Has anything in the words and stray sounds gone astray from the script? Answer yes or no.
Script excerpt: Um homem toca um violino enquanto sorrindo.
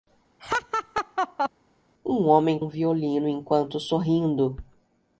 yes